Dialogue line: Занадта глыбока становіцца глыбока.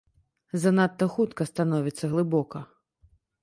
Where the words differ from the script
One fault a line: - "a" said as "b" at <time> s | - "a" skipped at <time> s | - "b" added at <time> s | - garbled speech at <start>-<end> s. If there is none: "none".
- "глыбока" said as "хутка" at 1.2 s